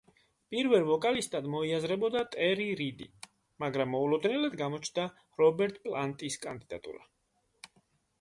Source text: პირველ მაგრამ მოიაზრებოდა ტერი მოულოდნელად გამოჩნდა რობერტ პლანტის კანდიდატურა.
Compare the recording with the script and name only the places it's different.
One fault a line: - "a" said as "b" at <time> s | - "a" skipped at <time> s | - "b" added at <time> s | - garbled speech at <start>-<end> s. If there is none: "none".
- "მაგრამ" said as "ვოკალისტად" at 0.8 s
- "რიდი მაგრამ" added at 2.8 s